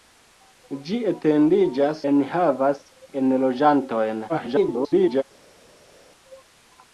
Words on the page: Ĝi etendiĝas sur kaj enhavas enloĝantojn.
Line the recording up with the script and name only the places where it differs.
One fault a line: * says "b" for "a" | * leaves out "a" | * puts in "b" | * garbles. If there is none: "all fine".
* leaves out "sur kaj"
* garbles